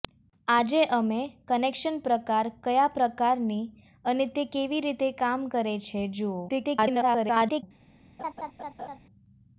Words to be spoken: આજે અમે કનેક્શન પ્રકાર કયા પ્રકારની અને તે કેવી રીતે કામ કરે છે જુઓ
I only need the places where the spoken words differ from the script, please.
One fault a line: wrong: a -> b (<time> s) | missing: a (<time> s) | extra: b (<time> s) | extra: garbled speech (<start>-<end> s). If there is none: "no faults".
extra: garbled speech (6.5-7.6 s)